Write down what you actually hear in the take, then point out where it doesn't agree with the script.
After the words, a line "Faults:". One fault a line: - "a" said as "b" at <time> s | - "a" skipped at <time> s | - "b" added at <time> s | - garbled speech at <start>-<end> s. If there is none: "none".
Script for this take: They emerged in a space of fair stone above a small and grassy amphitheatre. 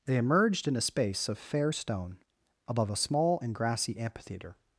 They emerged in a space of fair stone above a small and grassy amphitheatre.
Faults:
none